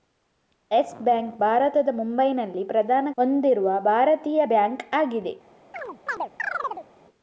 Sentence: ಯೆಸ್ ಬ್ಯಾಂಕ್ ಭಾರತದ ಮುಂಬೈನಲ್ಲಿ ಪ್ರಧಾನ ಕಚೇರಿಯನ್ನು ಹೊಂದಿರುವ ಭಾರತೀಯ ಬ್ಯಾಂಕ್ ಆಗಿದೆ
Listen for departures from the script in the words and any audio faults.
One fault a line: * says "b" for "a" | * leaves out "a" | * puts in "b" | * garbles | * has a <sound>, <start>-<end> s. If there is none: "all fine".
* leaves out "ಕಚೇರಿಯನ್ನು"
* has a chirp, 5.7-6.9 s